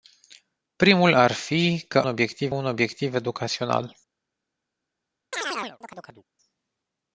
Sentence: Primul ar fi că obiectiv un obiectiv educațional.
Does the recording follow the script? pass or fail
pass